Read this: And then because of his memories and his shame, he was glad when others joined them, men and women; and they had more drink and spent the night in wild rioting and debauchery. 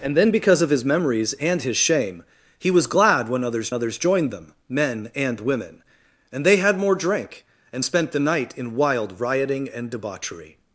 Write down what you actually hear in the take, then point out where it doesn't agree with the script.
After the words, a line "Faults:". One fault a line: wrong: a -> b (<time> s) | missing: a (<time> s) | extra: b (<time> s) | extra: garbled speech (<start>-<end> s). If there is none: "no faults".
And then because of his memories and his shame, he was glad when others others joined them, men and women; and they had more drink and spent the night in wild rioting and debauchery.
Faults:
extra: others (3.7 s)